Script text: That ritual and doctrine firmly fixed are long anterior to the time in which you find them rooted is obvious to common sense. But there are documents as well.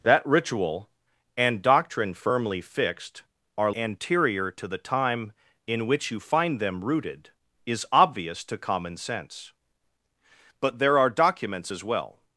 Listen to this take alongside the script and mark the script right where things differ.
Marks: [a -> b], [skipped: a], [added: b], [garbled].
That ritual and doctrine firmly fixed are [skipped: long] anterior to the time in which you find them rooted is obvious to common sense. But there are documents as well.